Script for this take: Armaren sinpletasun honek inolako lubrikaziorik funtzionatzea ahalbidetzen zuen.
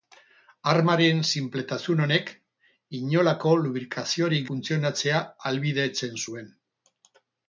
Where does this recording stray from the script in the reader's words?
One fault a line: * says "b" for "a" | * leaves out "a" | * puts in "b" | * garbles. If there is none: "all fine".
all fine